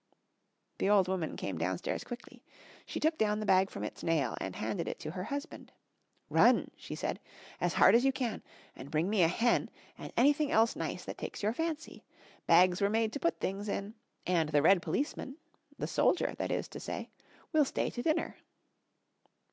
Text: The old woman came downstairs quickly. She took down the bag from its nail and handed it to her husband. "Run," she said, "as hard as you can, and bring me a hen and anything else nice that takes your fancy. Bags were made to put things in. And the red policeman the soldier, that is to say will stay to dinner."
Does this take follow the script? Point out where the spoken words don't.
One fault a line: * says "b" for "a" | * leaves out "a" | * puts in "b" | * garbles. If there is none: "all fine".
all fine